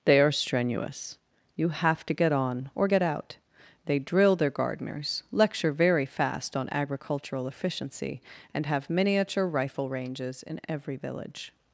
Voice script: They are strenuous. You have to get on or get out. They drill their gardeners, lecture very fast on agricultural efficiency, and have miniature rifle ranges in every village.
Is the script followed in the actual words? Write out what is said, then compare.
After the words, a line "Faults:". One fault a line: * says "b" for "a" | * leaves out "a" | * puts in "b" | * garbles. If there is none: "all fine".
They are strenuous. You have to get on or get out. They drill their gardeners, lecture very fast on agricultural efficiency, and have miniature rifle ranges in every village.
Faults:
all fine